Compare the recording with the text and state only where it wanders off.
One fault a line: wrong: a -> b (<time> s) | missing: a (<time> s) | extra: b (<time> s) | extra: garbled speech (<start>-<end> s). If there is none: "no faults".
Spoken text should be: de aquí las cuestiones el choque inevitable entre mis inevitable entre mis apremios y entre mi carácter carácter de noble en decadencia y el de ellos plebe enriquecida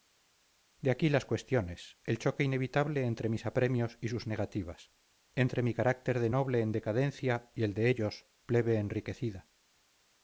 wrong: inevitable entre mis apremios y -> apremios y sus negativas (3.5 s)
missing: carácter (6.2 s)